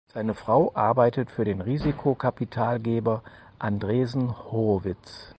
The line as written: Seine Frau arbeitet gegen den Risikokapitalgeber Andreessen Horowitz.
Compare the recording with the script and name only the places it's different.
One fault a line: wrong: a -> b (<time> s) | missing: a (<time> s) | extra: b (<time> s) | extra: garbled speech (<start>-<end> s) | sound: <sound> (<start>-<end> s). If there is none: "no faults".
wrong: gegen -> für (1.3 s)